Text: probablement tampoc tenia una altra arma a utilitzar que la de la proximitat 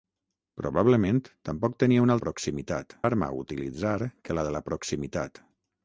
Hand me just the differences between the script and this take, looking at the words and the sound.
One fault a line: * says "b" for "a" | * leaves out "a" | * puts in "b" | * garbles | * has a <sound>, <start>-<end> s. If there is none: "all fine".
* says "proximitat" for "altra"